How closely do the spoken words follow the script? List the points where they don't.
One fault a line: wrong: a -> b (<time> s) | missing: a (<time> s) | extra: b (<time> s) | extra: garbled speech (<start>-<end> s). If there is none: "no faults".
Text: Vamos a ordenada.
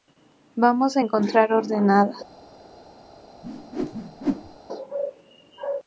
extra: encontrar (1.0 s)